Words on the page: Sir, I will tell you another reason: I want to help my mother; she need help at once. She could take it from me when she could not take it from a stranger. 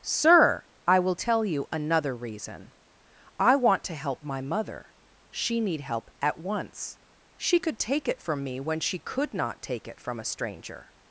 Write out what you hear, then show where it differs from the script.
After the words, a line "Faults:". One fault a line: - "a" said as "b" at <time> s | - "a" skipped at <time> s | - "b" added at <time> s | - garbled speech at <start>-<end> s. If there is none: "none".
Sir, I will tell you another reason: I want to help my mother; she need help at once. She could take it from me when she could not take it from a stranger.
Faults:
none